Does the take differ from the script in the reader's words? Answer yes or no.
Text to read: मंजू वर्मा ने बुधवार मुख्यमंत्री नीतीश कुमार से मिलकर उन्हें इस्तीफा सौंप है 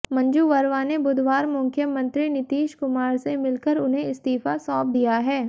yes